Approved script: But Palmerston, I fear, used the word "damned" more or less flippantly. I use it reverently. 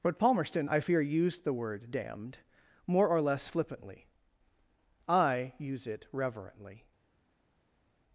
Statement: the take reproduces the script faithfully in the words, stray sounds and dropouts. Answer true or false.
true